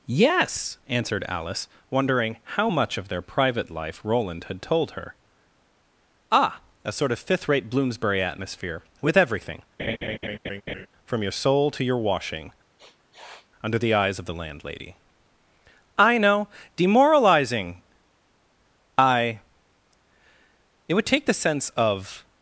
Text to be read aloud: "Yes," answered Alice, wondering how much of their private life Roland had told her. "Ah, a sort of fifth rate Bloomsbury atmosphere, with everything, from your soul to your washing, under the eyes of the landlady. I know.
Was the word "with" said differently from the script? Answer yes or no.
no